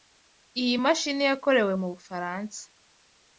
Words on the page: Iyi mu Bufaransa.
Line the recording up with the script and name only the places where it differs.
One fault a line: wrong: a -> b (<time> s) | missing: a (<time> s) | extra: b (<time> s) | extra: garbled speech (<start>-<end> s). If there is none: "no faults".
extra: mashini yakorewe (0.8 s)